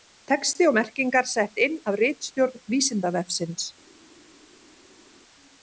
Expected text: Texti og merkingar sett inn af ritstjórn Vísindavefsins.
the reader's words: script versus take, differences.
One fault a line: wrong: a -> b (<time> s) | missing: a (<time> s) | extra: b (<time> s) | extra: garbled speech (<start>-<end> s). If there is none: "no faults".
no faults